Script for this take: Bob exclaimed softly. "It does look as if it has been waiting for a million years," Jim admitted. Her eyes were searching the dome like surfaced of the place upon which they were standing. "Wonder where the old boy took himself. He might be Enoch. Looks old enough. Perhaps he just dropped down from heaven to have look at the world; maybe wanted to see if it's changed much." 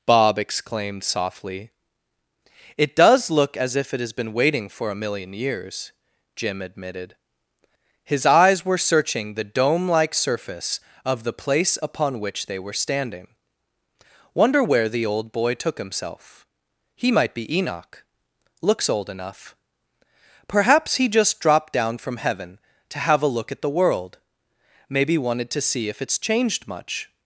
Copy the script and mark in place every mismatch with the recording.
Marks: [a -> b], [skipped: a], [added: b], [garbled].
Bob exclaimed softly. "It does look as if it has been waiting for a million years," Jim admitted. [Her -> His] eyes were searching the dome like [surfaced -> surface] of the place upon which they were standing. "Wonder where the old boy took himself. He might be Enoch. Looks old enough. Perhaps he just dropped down from heaven to have [added: a] look at the world; maybe wanted to see if it's changed much."